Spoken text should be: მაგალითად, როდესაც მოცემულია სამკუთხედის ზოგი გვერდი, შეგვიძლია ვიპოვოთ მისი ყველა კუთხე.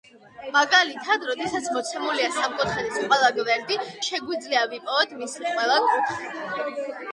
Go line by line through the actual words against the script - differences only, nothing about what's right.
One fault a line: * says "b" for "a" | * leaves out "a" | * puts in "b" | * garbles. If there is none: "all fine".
* says "ყველა" for "ზოგი"